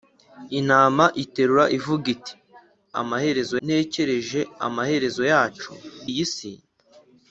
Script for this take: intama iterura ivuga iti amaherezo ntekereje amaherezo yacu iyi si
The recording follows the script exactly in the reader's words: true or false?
true